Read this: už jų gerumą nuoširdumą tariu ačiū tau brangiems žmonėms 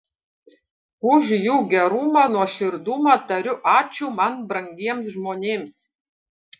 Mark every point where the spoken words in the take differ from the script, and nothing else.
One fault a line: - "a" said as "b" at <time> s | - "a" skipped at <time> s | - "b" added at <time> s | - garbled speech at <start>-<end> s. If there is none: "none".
- "tau" said as "man" at 4.2 s